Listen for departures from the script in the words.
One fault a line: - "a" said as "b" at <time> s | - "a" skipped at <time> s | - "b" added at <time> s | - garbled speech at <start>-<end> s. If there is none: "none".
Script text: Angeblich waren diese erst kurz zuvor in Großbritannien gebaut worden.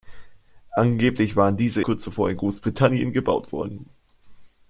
- "erst" skipped at 1.8 s